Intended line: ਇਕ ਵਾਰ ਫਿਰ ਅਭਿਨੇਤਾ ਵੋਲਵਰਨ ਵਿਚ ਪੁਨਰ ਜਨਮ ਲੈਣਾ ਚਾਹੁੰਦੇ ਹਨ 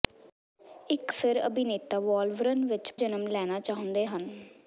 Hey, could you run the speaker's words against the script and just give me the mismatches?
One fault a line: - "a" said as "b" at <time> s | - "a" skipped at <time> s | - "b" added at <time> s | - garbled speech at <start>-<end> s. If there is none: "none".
- "ਵਾਰ" skipped at 1.1 s
- "ਪੁਨਰ" skipped at 2.9 s